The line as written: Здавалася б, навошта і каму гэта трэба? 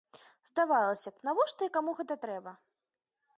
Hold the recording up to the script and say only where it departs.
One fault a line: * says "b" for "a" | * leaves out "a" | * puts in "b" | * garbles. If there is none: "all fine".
all fine